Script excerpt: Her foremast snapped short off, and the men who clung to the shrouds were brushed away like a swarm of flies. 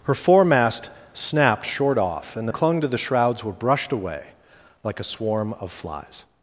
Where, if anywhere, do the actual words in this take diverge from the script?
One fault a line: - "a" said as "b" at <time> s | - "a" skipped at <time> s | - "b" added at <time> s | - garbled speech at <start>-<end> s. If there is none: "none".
- "men who" skipped at 2.5 s